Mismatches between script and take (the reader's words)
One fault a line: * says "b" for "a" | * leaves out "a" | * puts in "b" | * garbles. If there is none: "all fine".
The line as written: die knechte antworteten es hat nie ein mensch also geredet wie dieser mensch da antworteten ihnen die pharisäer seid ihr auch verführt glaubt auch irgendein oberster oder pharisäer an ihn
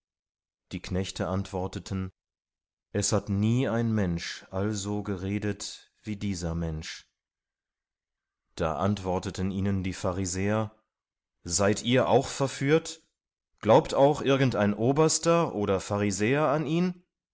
all fine